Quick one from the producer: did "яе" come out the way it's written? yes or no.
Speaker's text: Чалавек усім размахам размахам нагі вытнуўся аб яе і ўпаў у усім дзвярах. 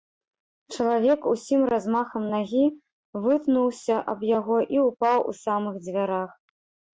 no